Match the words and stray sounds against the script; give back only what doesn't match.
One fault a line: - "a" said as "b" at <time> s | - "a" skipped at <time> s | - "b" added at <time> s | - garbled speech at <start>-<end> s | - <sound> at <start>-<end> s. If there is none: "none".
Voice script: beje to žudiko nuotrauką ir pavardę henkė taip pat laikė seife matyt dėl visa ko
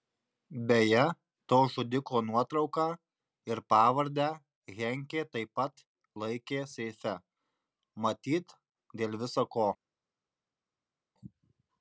none